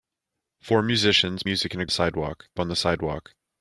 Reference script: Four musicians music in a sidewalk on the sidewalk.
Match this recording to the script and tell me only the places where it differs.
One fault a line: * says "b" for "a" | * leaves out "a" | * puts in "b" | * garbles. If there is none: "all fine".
all fine